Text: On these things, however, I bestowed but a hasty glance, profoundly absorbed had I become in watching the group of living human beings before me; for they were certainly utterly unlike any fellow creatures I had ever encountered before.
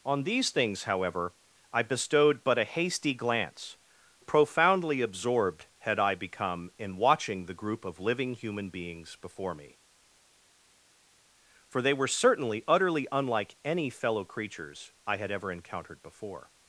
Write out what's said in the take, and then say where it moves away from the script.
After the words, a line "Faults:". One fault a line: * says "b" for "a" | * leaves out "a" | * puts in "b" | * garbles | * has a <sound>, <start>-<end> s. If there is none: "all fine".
On these things, however, I bestowed but a hasty glance, profoundly absorbed had I become in watching the group of living human beings before me; for they were certainly utterly unlike any fellow creatures I had ever encountered before.
Faults:
all fine